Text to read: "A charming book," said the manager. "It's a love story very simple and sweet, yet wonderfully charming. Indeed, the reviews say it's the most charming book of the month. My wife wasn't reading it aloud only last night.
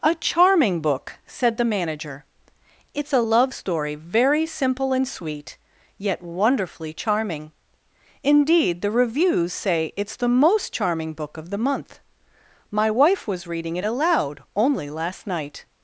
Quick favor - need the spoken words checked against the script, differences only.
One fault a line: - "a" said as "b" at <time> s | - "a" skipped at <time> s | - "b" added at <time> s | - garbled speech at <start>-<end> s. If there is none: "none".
- "wasn't" said as "was" at 13.3 s